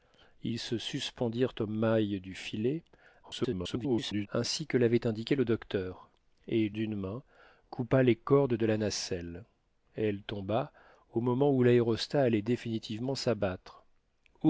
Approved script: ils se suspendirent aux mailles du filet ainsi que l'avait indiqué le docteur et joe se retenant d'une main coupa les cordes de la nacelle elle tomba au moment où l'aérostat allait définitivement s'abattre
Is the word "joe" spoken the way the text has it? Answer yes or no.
no